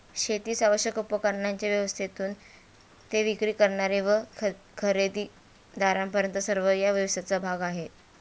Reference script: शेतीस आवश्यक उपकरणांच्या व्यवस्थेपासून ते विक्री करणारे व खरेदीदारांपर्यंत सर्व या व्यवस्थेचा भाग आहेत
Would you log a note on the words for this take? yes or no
no